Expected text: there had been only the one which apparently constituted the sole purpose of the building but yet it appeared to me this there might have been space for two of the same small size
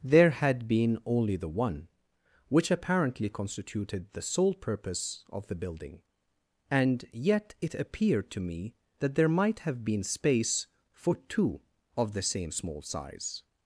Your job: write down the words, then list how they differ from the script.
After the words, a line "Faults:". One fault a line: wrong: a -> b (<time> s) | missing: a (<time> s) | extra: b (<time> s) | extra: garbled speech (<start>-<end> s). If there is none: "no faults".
there had been only the one which apparently constituted the sole purpose of the building and yet it appeared to me that there might have been space for two of the same small size
Faults:
wrong: but -> and (6.7 s)
wrong: this -> that (9.0 s)